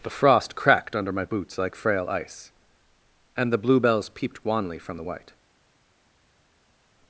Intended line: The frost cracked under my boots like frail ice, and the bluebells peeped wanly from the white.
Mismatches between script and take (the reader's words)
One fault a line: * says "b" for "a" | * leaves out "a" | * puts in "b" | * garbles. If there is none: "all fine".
all fine